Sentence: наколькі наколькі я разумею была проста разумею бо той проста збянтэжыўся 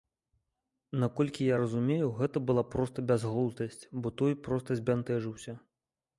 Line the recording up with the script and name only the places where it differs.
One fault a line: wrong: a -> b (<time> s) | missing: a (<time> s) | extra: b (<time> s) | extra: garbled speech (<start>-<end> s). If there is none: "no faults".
missing: наколькі (1.5 s)
extra: гэта (2.2 s)
wrong: разумею -> бязглуздасць (3.1 s)